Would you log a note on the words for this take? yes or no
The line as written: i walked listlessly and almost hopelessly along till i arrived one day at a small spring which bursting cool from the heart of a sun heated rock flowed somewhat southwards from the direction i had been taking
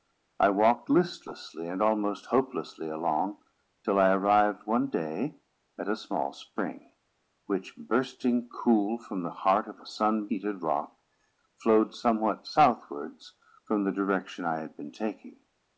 no